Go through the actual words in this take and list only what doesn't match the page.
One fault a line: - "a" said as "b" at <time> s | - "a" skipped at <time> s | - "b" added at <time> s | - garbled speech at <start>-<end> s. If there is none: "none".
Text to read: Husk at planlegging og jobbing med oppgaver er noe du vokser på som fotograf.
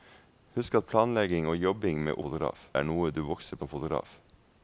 - "oppgaver" said as "fotograf" at 2.2 s
- "på" skipped at 3.6 s